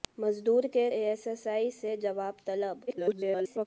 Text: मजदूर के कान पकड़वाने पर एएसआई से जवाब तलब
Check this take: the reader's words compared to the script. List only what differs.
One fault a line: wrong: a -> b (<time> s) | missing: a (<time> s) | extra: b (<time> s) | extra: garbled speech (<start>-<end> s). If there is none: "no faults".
missing: कान पकड़वाने पर (0.8 s)
extra: garbled speech (2.9-3.7 s)